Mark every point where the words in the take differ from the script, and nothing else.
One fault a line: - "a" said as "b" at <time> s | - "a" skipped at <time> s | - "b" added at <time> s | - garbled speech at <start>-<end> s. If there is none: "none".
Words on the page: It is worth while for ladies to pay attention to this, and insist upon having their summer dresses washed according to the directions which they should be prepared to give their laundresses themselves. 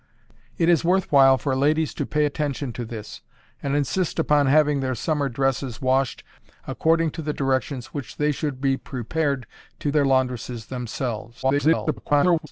- "give" skipped at 9.9 s
- garbled speech at 11.4-12.5 s